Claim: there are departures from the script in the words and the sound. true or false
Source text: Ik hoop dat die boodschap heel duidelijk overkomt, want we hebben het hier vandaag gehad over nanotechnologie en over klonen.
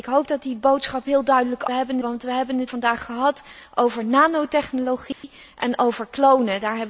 true